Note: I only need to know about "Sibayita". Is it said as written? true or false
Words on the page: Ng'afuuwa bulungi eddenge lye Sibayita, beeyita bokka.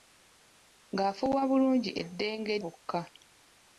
false